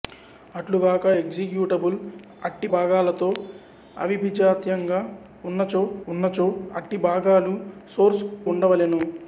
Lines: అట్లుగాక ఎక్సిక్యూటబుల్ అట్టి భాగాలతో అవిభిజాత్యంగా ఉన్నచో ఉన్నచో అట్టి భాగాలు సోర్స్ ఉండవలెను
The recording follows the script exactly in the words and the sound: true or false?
true